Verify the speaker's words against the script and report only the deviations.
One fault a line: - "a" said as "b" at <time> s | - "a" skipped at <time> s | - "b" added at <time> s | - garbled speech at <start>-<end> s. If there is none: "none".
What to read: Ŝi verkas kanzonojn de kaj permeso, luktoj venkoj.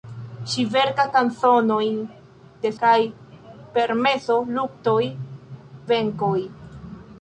none